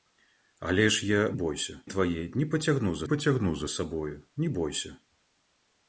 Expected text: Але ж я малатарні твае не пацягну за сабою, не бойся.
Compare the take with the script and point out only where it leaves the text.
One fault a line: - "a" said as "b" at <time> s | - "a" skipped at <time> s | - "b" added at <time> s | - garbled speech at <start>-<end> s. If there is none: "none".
- "малатарні" said as "бойся" at 1.3 s
- "пацягну за" added at 3.0 s